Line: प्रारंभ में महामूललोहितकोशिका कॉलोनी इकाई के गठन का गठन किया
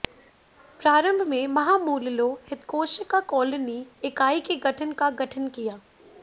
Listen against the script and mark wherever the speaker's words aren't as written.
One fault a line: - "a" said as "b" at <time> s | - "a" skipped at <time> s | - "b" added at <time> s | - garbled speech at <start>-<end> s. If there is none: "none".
none